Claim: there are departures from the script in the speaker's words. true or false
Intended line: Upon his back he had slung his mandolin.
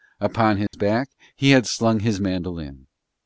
false